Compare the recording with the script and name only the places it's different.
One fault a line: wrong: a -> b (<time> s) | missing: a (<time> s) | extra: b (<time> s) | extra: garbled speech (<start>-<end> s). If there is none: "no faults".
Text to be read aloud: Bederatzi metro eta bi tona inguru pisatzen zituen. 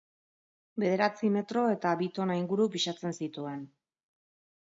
no faults